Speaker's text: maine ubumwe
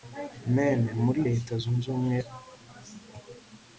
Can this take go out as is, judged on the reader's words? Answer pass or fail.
fail